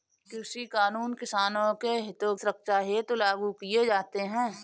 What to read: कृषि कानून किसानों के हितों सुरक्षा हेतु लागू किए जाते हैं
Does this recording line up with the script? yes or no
yes